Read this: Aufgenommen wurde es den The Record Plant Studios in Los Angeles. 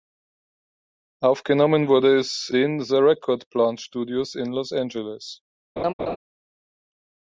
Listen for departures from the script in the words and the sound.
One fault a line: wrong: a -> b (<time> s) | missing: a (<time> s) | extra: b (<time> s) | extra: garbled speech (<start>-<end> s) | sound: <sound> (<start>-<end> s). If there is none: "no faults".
sound: laugh (5.8-6.2 s)